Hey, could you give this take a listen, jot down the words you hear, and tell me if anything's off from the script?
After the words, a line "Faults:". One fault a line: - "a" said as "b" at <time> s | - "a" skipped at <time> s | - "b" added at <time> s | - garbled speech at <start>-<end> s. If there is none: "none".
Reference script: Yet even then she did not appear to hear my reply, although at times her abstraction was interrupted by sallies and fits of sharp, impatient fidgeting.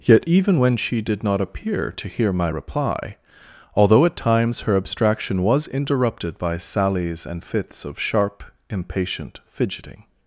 Yet even when she did not appear to hear my reply, although at times her abstraction was interrupted by sallies and fits of sharp, impatient fidgeting.
Faults:
- "then" said as "when" at 0.6 s